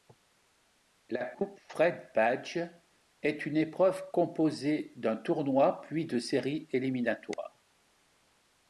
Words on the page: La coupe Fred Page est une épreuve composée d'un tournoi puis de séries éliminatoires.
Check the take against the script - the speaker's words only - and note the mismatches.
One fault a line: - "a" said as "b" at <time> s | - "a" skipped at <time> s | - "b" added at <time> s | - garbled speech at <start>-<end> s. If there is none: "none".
none